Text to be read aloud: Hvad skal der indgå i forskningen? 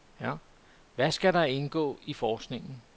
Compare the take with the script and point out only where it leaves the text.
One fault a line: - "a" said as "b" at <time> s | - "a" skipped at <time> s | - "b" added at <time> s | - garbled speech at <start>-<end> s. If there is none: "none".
none